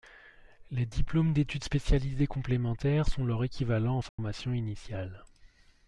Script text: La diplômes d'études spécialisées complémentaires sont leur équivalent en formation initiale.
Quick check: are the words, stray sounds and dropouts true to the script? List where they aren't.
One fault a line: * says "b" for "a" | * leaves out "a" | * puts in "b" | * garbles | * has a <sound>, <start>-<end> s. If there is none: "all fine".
* says "Les" for "La"
* has a dropout, 4.1-4.2 s